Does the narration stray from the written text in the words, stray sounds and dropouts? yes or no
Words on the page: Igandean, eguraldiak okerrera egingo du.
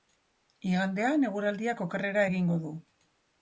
no